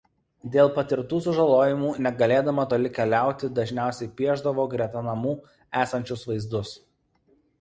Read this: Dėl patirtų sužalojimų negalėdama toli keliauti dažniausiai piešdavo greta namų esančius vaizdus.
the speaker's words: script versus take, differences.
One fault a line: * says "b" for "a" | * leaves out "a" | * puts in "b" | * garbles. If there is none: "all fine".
all fine